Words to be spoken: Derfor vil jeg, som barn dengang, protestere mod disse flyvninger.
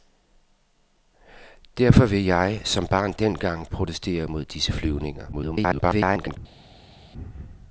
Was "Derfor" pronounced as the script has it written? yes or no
yes